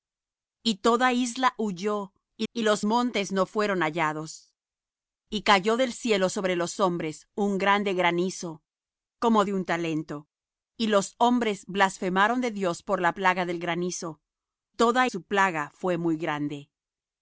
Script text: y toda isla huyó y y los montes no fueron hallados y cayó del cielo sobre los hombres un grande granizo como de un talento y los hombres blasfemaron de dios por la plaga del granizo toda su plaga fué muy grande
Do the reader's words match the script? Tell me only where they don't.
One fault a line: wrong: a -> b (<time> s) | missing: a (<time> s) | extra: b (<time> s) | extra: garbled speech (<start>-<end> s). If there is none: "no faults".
no faults